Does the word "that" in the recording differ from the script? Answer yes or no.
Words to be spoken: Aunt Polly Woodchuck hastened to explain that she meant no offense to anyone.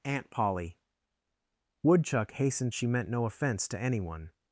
yes